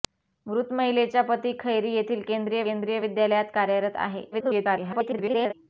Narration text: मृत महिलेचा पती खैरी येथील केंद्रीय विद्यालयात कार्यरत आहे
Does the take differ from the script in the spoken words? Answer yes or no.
yes